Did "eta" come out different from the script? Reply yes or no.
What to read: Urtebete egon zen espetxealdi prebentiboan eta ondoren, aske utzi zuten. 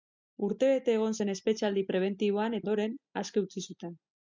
yes